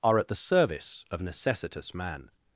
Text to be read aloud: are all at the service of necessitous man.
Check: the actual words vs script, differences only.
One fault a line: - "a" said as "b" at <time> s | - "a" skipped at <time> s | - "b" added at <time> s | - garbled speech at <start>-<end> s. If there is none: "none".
- "all" skipped at 0.2 s